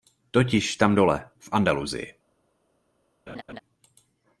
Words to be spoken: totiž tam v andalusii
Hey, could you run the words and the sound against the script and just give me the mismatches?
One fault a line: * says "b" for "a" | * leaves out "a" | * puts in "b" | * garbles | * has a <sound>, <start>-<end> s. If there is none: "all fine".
* puts in "dole"
* has a laugh, 3.3-3.6 s